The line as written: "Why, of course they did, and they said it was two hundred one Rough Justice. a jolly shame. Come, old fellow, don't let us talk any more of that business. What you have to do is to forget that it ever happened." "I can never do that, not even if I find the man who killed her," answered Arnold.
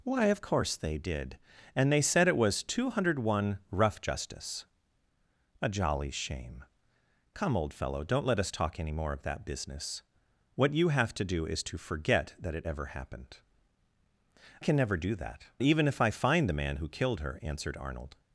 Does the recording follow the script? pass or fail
fail